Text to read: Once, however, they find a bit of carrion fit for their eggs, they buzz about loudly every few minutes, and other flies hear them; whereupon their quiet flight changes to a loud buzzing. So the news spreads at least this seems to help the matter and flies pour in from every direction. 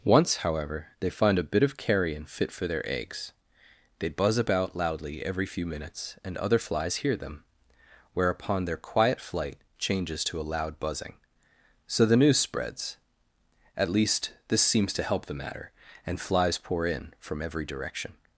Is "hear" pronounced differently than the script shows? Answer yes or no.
no